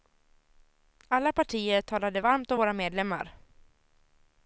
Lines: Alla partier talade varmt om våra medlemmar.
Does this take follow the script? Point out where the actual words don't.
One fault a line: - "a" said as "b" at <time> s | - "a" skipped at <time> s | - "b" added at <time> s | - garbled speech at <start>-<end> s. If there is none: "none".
none